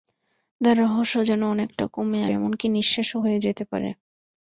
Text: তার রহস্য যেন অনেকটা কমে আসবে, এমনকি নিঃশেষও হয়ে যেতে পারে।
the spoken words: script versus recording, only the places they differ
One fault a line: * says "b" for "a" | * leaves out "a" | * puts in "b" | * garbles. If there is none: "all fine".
* leaves out "আসবে"